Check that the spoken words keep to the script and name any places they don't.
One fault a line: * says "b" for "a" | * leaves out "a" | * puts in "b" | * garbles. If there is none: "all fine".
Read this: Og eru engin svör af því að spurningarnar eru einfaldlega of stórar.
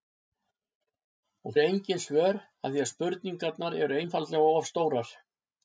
all fine